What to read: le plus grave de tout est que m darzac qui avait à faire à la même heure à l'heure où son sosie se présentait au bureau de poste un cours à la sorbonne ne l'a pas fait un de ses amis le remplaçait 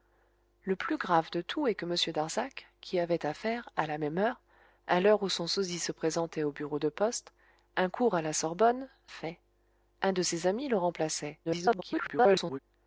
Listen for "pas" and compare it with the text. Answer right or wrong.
wrong